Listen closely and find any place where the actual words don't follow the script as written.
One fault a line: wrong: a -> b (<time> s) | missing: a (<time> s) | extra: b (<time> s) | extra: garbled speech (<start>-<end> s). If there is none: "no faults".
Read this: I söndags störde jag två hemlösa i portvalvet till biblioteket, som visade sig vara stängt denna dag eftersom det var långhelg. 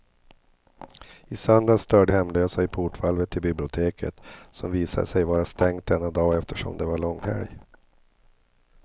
missing: jag två (2.1 s)